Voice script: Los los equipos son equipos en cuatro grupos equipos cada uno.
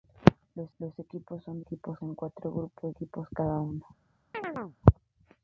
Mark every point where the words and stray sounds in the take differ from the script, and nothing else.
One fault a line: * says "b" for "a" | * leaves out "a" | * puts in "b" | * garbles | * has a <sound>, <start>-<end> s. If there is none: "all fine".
* has a chirp, 4.3-4.8 s